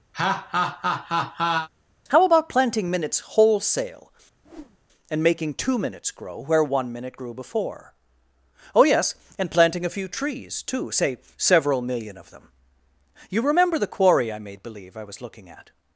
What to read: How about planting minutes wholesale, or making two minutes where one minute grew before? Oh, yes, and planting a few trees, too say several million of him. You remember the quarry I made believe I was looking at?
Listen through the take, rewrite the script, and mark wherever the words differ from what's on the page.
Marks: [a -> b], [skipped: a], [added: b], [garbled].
How about planting minutes wholesale, [or -> and] making two minutes [added: grow] where one minute grew before? Oh, yes, and planting a few trees, too say several million of [him. -> them] You remember the quarry I made believe I was looking at?